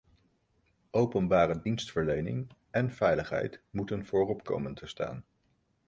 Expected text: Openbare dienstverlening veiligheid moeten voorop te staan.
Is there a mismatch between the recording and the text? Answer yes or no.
yes